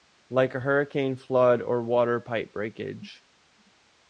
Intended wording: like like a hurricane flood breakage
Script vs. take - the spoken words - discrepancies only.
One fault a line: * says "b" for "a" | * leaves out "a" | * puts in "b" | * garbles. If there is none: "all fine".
* leaves out "like"
* puts in "or water pipe"